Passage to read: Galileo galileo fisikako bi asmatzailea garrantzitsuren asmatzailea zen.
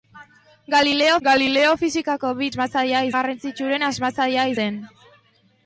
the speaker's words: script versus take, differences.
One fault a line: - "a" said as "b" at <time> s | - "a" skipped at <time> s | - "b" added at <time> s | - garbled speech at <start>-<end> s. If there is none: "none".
none